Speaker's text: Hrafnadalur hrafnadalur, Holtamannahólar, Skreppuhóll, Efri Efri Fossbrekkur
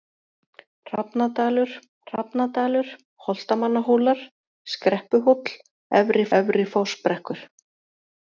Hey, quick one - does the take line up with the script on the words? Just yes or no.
yes